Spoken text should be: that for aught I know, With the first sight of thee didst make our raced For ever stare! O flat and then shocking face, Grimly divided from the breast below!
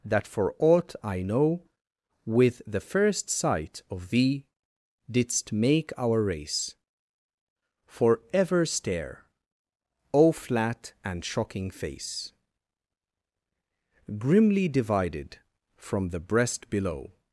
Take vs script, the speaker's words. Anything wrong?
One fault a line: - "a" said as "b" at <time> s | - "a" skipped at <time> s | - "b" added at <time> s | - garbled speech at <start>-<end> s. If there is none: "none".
- "raced" said as "race" at 6.2 s
- "then" skipped at 11.2 s